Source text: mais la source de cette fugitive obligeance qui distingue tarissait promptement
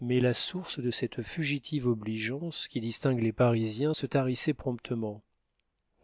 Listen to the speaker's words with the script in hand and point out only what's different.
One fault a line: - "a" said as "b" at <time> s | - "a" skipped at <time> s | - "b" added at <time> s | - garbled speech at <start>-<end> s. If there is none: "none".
- "les parisiens se" added at 3.2 s